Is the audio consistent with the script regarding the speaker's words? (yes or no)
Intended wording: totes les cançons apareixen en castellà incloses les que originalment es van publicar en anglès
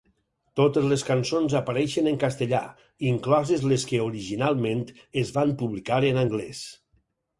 yes